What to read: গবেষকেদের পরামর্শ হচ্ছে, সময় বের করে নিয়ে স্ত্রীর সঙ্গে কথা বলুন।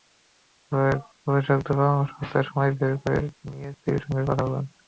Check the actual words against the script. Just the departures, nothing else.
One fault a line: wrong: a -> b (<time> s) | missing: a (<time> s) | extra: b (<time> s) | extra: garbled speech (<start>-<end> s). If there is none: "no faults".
no faults